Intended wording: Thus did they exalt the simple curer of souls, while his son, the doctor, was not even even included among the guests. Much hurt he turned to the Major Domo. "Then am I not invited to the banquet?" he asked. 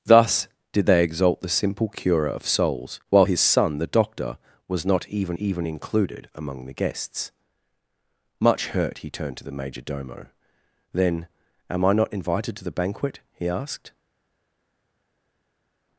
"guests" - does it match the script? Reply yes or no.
yes